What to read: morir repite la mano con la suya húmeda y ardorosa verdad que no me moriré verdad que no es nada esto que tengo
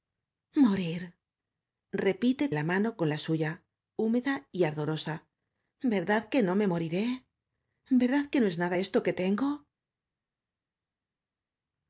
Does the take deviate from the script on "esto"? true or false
false